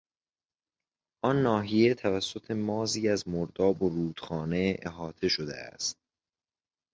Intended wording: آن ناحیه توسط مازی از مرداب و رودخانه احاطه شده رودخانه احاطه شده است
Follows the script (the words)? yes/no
no